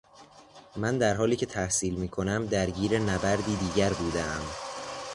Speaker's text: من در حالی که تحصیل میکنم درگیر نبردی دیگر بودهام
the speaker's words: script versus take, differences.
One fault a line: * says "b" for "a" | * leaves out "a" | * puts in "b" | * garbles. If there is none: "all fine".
all fine